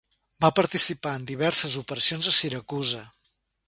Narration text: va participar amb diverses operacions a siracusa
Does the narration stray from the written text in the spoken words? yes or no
yes